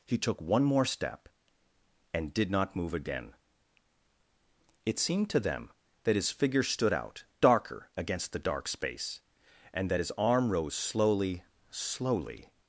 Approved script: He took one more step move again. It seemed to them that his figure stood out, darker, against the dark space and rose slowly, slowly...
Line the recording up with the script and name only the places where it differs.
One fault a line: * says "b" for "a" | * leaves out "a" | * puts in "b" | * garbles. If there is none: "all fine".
* puts in "and did not"
* puts in "that his arm"